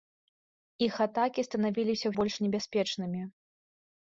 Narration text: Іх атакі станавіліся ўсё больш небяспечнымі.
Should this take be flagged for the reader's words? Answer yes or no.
yes